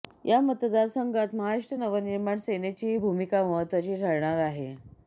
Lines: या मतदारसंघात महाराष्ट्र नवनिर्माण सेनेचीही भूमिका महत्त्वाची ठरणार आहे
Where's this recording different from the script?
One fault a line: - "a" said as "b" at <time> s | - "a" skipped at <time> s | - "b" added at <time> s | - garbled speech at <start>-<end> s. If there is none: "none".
none